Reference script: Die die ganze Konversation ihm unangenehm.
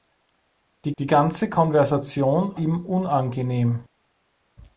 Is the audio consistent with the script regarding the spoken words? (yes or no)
yes